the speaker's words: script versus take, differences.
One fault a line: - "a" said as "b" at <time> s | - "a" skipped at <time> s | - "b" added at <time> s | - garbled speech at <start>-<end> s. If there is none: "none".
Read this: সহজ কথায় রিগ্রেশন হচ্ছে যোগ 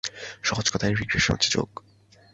none